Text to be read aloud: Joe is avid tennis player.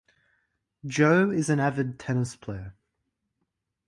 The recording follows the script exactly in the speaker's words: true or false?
false